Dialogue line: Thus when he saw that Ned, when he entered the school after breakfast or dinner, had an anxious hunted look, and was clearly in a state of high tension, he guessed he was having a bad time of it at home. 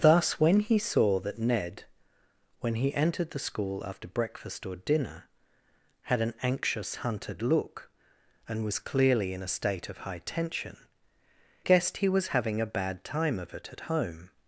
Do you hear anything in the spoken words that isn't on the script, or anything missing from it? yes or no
yes